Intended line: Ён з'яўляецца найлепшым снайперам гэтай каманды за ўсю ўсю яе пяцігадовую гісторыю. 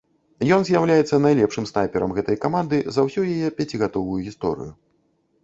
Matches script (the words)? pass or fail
fail